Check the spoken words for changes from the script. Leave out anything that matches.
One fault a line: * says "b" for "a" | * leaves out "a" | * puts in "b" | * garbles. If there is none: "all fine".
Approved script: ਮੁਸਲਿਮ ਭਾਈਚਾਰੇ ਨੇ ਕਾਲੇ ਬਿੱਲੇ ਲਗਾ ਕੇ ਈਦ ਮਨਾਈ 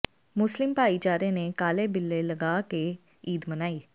all fine